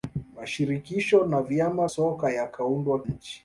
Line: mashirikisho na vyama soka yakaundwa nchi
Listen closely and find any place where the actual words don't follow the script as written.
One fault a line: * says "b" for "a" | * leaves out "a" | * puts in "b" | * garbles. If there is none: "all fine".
all fine